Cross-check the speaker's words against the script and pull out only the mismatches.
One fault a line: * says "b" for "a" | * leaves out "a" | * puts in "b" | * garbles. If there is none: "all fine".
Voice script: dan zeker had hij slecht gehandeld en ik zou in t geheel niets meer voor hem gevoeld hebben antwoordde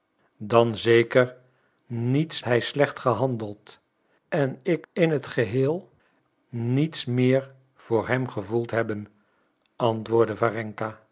* says "niets" for "had"
* leaves out "zou"